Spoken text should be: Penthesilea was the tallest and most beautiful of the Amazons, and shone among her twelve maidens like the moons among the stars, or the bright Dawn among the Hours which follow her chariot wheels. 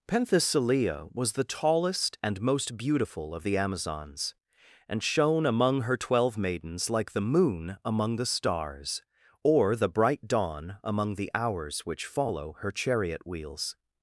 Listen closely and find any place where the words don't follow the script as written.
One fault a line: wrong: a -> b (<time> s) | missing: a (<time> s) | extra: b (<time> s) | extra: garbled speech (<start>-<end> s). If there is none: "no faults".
wrong: moons -> moon (7.2 s)